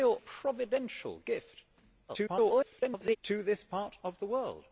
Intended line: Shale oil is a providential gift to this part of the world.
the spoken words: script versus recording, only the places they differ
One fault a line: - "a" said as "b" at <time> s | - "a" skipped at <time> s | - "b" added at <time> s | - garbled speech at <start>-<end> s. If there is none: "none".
- "oil is a" skipped at 0.2 s
- garbled speech at 2.1-3.2 s